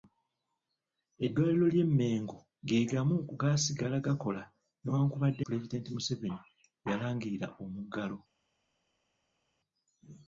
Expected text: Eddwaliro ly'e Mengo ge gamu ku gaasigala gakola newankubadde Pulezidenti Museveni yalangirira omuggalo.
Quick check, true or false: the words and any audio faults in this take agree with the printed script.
true